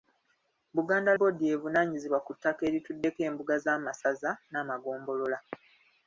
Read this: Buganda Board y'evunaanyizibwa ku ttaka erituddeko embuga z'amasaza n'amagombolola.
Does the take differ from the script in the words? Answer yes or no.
no